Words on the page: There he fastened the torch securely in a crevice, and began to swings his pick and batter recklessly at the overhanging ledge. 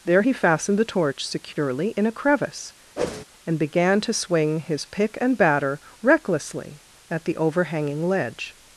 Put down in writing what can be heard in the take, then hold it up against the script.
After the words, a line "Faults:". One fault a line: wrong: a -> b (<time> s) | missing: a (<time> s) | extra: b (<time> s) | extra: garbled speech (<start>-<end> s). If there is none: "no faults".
There he fastened the torch securely in a crevice, and began to swing his pick and batter recklessly at the overhanging ledge.
Faults:
wrong: swings -> swing (4.1 s)